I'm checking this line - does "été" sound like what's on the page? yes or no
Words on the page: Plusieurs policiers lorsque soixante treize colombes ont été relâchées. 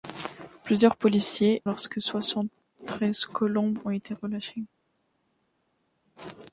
yes